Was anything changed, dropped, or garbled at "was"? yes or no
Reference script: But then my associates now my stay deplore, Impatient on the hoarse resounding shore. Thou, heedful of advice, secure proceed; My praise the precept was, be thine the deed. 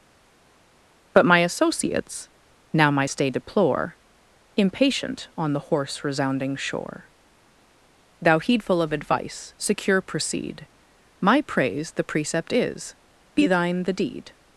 yes